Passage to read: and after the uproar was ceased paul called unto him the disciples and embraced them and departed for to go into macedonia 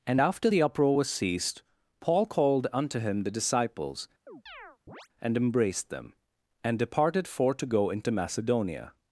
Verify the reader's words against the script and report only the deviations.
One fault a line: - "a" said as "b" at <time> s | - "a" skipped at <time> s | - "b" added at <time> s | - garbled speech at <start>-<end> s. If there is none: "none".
none